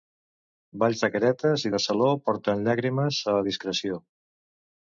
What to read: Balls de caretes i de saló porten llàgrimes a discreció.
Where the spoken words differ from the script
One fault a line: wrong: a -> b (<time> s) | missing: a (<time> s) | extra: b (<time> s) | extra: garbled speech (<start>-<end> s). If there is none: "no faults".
no faults